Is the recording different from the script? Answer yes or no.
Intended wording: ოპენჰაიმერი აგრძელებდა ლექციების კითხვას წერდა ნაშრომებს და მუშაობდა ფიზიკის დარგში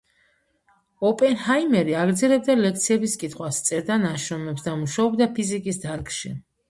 no